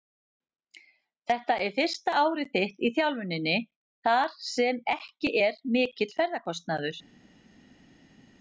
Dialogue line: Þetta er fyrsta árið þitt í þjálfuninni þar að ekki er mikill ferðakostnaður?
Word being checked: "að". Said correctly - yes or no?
no